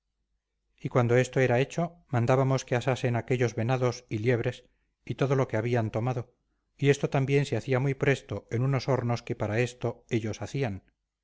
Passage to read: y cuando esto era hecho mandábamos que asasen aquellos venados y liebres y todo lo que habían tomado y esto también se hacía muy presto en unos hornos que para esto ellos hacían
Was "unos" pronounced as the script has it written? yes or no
yes